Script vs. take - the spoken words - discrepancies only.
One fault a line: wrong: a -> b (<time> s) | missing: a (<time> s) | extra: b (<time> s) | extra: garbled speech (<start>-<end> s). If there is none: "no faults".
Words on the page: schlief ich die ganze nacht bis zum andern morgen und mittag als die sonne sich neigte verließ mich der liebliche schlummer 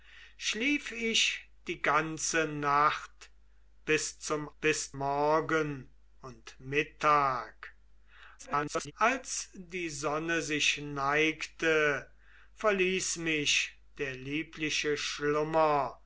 wrong: andern -> bis (4.6 s)
extra: garbled speech (8.4-8.9 s)